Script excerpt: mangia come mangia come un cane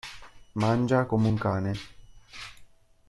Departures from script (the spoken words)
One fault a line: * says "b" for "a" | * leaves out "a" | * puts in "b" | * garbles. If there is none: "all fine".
* leaves out "mangia come"